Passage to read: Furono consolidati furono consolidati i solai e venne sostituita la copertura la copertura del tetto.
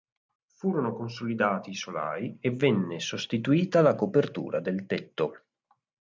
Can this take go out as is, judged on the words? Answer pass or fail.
fail